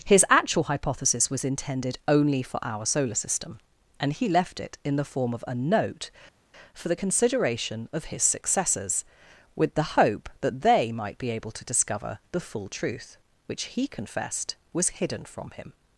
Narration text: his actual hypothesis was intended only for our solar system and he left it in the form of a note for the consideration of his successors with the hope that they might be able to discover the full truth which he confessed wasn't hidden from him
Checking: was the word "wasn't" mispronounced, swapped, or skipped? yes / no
yes